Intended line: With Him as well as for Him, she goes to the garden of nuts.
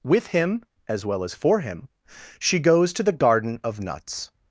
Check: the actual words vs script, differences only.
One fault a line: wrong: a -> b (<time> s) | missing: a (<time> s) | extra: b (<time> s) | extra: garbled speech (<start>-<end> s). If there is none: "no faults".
no faults